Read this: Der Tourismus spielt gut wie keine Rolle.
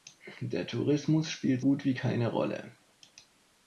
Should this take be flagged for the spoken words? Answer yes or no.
no